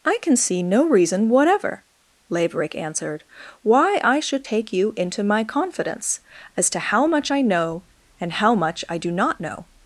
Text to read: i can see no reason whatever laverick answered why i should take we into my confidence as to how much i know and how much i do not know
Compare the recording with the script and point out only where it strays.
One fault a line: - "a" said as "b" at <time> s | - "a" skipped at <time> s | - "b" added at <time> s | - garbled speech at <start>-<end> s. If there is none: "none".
- "we" said as "you" at 4.7 s